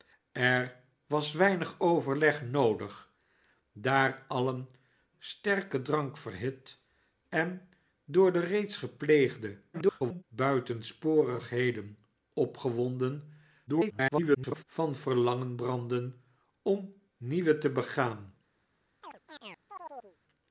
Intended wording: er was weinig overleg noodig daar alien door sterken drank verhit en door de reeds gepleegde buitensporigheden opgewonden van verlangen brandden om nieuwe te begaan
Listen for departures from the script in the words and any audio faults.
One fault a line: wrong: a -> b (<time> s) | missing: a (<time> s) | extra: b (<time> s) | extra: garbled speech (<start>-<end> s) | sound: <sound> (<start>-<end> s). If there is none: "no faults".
missing: door (4.7 s)
extra: garbled speech (9.7-10.2 s)
extra: garbled speech (13.7-14.6 s)
sound: chirp (19.0-20.2 s)